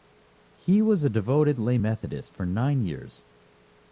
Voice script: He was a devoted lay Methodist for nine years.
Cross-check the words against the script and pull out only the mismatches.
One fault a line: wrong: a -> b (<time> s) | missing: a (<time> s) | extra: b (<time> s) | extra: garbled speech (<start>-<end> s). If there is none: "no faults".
no faults